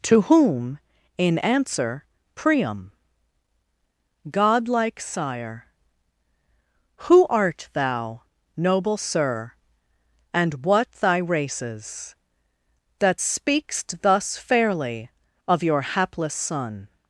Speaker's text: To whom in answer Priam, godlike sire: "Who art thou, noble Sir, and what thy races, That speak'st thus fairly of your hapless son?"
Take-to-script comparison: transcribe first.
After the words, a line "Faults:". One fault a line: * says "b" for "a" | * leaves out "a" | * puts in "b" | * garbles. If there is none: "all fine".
To whom in answer Priam, godlike sire: "Who art thou, noble Sir, and what thy races, That speak'st thus fairly of your hapless son?"
Faults:
all fine